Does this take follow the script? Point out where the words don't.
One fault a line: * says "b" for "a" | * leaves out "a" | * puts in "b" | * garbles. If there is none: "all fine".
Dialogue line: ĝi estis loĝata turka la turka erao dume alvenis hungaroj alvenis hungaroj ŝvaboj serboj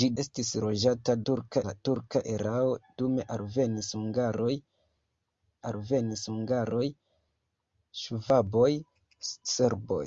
all fine